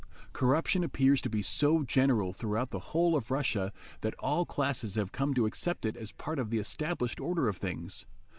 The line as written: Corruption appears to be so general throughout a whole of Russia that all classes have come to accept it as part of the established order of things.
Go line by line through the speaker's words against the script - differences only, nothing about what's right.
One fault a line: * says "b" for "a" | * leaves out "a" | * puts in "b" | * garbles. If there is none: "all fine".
* says "the" for "a"